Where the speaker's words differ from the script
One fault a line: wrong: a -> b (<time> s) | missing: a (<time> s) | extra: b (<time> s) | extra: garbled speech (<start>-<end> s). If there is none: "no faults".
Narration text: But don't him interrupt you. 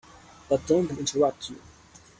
no faults